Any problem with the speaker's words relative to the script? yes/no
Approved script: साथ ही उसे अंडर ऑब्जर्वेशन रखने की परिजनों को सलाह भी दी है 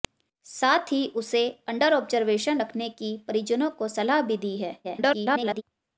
yes